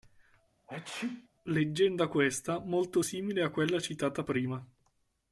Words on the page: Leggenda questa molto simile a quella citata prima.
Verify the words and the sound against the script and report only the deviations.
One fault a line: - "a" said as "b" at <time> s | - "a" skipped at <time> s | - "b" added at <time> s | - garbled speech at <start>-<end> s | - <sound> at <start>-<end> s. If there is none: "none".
- sneeze at 0.7-1.3 s